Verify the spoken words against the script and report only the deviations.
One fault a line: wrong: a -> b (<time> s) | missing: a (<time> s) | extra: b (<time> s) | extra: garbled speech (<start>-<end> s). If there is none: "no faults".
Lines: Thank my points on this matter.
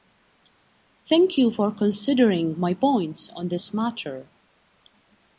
extra: you for considering (1.4 s)